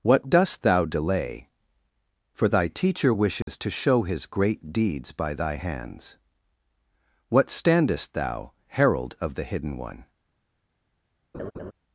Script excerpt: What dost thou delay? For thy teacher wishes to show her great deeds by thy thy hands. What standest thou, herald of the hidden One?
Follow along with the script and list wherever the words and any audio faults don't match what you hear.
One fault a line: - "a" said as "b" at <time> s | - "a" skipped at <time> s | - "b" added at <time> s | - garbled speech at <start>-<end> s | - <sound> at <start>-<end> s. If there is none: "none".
- dropout at 3.4-3.5 s
- "her" said as "his" at 4.0 s
- "thy" skipped at 5.6 s
- laugh at 11.3-11.7 s